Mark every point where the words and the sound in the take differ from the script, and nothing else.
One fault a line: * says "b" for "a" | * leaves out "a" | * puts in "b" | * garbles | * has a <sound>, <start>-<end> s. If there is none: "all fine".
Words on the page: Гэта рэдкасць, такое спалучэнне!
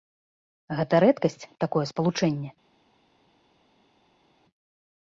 all fine